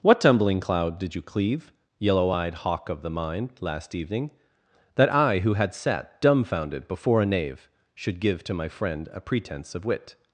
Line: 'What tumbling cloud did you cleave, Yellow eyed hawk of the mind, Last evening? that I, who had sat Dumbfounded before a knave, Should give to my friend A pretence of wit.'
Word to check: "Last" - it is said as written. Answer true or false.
true